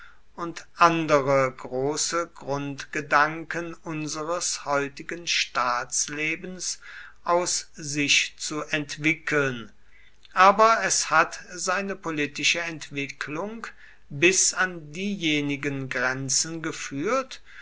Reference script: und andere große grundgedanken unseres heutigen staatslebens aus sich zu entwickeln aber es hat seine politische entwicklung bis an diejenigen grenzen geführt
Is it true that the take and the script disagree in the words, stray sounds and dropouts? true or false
false